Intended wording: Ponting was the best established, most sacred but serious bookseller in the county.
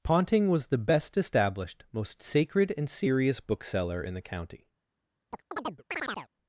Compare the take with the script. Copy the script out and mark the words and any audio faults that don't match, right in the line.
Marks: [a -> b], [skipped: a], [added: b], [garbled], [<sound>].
Ponting was the best established, most sacred [but -> and] serious bookseller in the county. [chirp]